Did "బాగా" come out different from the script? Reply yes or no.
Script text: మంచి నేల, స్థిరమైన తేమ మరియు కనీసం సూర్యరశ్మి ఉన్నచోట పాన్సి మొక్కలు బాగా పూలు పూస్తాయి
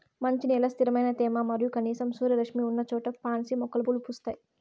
yes